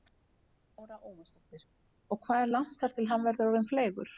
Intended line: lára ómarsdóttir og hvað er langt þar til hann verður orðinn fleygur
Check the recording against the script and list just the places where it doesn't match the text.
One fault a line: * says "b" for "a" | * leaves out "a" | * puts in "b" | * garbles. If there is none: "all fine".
all fine